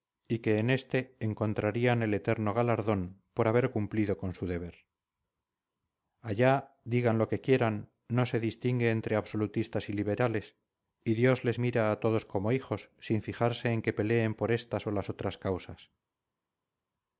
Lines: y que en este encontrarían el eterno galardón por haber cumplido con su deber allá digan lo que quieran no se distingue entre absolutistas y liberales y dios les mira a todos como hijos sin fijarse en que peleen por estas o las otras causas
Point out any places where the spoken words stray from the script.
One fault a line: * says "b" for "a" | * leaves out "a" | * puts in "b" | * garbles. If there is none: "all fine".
all fine